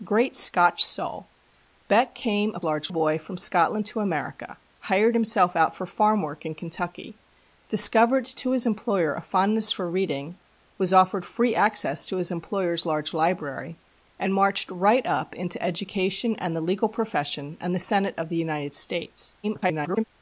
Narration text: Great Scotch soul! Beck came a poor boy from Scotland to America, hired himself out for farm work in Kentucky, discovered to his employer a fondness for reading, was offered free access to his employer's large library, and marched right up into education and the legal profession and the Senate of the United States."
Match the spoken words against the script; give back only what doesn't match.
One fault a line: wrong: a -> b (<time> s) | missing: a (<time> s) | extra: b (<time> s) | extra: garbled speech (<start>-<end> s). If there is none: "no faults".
wrong: poor -> large (2.6 s)
extra: garbled speech (19.4-20.0 s)